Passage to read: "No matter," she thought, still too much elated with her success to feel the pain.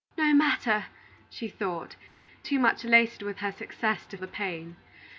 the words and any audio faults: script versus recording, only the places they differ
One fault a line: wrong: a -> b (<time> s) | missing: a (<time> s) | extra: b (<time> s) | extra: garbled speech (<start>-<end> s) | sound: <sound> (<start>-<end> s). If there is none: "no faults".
missing: still (1.9 s)
missing: feel (4.2 s)